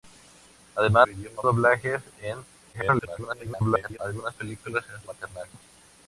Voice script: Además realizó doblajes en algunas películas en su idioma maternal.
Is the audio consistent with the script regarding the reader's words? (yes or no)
no